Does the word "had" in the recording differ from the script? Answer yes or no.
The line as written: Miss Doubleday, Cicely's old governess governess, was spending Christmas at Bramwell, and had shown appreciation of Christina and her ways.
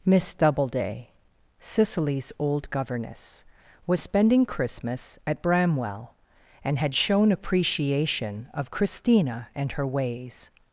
no